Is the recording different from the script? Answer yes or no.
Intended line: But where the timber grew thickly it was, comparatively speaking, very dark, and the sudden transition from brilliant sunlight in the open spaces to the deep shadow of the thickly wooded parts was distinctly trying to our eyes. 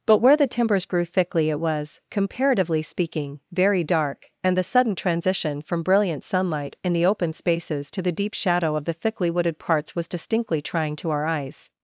yes